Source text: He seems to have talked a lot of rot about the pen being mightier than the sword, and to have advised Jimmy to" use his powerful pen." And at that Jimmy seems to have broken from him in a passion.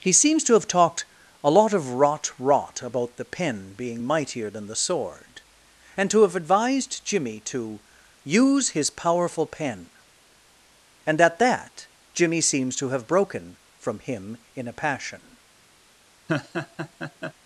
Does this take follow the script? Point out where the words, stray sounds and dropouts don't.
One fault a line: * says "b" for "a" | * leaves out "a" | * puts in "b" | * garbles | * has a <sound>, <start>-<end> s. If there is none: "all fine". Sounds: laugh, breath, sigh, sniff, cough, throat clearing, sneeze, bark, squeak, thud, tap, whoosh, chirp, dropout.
* puts in "rot"
* has a laugh, 16.3-17.3 s